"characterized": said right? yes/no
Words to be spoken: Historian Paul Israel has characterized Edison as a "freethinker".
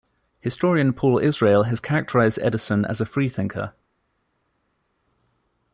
yes